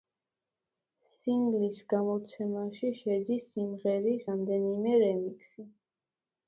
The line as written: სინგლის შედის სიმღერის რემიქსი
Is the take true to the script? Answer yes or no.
no